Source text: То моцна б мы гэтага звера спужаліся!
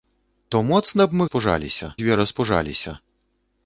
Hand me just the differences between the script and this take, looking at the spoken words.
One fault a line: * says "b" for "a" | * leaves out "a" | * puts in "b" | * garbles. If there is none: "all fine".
* says "спужаліся" for "гэтага"